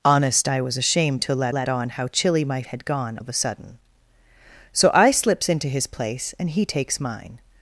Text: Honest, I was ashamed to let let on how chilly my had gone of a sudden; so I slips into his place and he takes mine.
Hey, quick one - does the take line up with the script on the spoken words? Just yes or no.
yes